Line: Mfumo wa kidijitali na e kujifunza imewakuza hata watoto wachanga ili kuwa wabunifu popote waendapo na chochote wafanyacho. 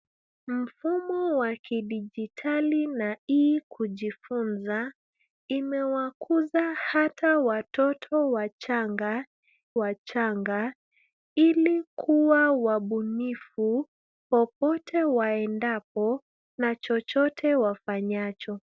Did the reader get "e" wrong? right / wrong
right